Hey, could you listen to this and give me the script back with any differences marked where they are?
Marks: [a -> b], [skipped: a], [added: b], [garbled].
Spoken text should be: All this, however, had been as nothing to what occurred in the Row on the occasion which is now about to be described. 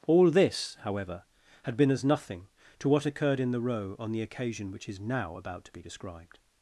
All this, however, had been as nothing to what occurred in the Row on the occasion which is now about to be described.